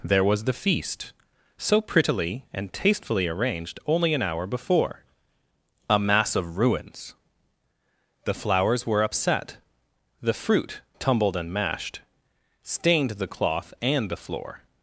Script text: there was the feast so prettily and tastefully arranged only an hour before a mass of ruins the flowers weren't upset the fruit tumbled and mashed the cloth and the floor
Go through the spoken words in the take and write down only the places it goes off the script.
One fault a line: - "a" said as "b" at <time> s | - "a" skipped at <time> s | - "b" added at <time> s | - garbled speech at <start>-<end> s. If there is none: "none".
- "weren't" said as "were" at 8.9 s
- "stained" added at 12.6 s